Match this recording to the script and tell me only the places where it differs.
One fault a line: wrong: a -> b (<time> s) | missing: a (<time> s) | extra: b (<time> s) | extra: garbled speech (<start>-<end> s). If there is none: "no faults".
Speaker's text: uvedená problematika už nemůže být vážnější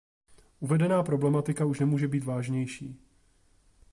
no faults